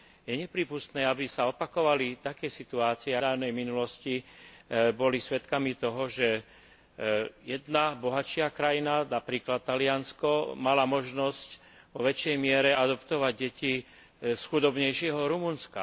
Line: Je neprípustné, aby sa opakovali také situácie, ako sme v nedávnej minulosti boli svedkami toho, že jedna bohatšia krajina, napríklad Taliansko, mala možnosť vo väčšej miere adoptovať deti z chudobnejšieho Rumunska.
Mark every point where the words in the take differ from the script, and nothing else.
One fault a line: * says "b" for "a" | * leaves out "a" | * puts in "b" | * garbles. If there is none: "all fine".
* leaves out "ako sme v"